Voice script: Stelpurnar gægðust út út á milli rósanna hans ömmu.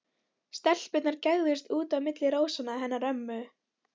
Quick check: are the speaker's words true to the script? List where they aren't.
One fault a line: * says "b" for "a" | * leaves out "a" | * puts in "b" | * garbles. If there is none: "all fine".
* leaves out "út"
* says "hennar" for "hans"